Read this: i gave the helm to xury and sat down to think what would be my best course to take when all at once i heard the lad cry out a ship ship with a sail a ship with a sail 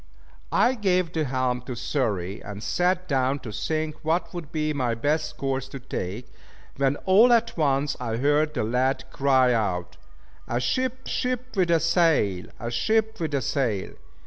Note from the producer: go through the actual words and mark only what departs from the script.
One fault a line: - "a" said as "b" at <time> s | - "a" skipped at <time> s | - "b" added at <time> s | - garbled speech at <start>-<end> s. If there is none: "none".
none